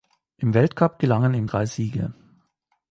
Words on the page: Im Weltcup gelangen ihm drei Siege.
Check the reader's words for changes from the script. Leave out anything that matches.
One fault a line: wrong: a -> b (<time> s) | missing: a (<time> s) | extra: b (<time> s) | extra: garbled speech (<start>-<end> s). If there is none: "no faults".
no faults